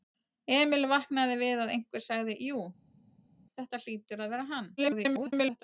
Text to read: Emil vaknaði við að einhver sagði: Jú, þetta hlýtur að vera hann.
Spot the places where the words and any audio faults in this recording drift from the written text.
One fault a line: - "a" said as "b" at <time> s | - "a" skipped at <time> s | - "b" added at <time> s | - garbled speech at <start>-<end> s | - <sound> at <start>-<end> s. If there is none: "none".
- garbled speech at 4.8-5.6 s